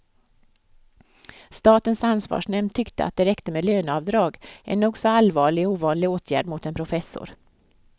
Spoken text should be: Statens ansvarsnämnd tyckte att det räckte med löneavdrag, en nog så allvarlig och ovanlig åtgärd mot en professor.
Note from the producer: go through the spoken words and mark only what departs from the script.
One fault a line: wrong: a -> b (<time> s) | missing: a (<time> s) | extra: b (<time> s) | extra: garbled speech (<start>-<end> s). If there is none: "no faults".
no faults